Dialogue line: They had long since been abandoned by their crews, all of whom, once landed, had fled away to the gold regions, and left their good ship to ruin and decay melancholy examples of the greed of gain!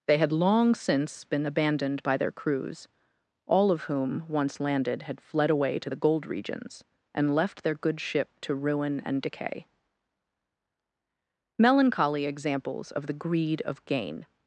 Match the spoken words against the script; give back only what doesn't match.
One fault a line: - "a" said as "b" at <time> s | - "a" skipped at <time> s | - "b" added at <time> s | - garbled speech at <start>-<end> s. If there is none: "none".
none